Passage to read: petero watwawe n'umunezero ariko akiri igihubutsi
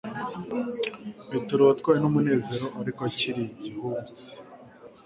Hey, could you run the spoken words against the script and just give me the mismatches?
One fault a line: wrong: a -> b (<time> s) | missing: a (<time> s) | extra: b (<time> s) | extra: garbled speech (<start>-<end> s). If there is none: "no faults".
no faults